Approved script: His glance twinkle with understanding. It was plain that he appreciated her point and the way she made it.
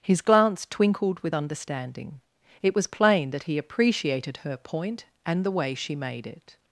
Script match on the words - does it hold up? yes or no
no